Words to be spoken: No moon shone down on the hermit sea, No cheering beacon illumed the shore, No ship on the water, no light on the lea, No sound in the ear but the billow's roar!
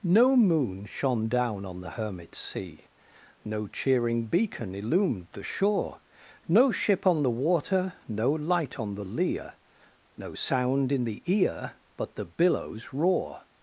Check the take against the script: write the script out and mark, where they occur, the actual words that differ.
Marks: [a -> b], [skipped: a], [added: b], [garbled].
No moon shone down on the hermit sea, No cheering beacon illumed the shore, No ship on the water, no light on the lea, No sound in the ear but the billow's roar!